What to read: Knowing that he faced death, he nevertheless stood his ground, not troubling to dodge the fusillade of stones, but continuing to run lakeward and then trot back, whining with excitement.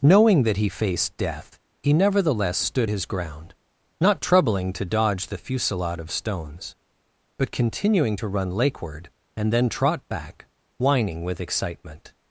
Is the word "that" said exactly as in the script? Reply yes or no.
yes